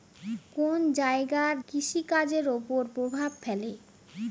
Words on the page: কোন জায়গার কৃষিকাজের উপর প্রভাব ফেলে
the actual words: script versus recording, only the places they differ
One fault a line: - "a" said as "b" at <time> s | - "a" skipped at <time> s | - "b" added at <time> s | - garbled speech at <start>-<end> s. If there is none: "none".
none